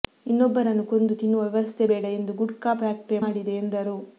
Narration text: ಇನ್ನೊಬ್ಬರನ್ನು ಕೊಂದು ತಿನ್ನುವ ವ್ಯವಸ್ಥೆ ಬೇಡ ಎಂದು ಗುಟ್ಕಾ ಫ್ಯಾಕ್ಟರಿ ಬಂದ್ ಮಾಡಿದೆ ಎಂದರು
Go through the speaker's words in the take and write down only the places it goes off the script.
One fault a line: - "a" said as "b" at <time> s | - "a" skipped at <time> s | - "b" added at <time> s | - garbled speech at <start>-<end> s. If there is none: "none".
- "ಬಂದ್" skipped at 3.2 s